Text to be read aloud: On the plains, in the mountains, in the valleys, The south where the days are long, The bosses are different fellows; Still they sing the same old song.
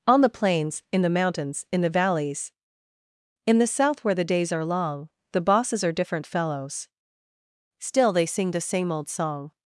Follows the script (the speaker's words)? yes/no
no